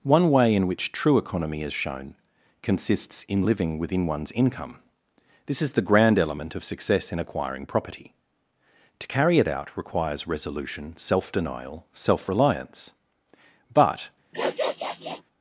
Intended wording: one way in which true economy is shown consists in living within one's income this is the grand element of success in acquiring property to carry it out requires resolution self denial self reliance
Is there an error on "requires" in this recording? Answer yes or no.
no